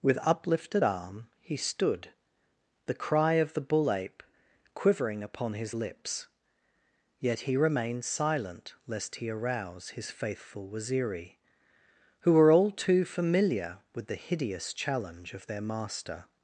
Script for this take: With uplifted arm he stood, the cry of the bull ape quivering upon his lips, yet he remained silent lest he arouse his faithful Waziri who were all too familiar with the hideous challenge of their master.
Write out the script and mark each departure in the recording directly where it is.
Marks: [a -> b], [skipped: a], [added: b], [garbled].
With uplifted arm he stood, the cry of the bull ape quivering upon his lips, yet he remained silent lest he arouse his faithful Waziri who were all too familiar with the hideous challenge of their master.